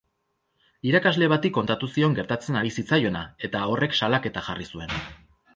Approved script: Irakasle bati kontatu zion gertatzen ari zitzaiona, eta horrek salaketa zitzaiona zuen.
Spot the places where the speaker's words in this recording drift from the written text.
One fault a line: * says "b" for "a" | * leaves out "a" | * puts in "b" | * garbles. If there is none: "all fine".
* says "jarri" for "zitzaiona"